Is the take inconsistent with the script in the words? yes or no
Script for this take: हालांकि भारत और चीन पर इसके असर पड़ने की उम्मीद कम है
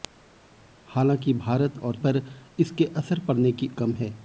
yes